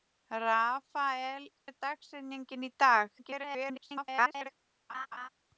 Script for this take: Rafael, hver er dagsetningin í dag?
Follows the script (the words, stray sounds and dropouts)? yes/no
no